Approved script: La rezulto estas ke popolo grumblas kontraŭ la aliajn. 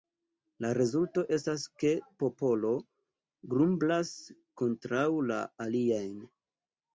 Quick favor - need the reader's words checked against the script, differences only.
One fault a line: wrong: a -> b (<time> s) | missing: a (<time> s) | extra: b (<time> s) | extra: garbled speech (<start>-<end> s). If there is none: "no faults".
no faults